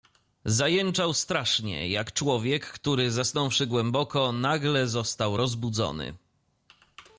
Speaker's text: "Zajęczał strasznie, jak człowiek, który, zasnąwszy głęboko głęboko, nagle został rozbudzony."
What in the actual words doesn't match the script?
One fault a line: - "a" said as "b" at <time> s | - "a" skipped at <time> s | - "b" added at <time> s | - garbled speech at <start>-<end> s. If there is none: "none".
- "głęboko" skipped at 4.3 s